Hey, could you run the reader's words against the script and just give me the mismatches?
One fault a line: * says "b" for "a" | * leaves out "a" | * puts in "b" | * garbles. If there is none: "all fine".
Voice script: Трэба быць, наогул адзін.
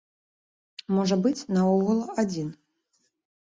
* says "Можа" for "Трэба"